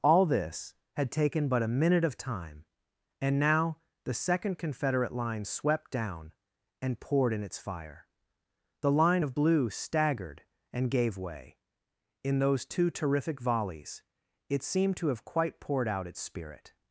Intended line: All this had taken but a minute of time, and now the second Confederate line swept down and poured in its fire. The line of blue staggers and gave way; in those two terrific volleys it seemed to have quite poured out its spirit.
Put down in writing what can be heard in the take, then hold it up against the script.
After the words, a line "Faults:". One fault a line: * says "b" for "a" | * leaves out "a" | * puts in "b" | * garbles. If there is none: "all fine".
All this had taken but a minute of time, and now the second Confederate line swept down and poured in its fire. The line of blue staggered and gave way; in those two terrific volleys it seemed to have quite poured out its spirit.
Faults:
* says "staggered" for "staggers"